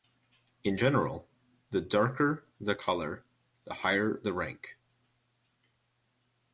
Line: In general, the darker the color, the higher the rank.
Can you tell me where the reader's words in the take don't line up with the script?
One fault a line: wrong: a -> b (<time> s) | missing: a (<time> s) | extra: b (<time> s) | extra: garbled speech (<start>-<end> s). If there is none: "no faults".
no faults